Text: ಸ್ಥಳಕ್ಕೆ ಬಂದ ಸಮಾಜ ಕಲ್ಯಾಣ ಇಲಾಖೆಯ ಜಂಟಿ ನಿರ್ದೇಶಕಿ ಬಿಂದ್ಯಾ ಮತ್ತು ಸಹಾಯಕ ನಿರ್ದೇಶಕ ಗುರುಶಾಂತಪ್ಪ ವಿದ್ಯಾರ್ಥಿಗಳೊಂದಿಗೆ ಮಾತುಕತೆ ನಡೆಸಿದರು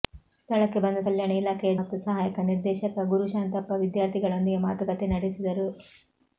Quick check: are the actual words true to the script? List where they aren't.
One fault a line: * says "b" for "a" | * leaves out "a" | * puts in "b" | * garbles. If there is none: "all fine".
* leaves out "ಸಮಾಜ"
* leaves out "ಜಂಟಿ ನಿರ್ದೇಶಕಿ ಬಿಂದ್ಯಾ"